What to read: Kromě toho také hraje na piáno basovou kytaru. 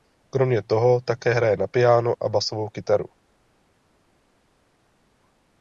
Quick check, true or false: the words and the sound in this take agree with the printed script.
false